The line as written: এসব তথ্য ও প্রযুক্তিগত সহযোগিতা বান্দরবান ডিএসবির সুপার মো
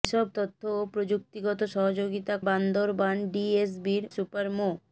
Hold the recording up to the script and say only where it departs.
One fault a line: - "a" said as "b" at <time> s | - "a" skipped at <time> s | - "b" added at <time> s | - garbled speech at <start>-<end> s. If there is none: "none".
none